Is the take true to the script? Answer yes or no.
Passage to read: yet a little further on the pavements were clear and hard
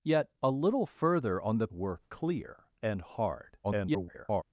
no